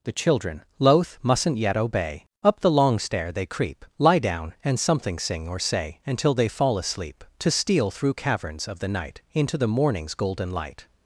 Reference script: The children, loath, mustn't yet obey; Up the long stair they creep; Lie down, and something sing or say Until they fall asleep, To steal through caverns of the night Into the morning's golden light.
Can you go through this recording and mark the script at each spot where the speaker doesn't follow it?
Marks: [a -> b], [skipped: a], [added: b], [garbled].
The children, loath, mustn't yet obey; Up the long stair they creep; Lie down, and something sing or say Until they fall asleep, To steal through caverns of the night Into the morning's golden light.